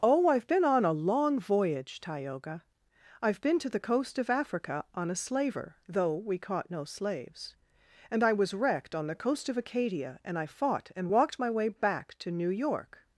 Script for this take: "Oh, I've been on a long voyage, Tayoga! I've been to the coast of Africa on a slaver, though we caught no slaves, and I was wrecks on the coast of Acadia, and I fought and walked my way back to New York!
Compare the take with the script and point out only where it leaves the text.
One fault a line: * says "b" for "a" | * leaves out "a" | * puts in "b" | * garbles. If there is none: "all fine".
* says "wrecked" for "wrecks"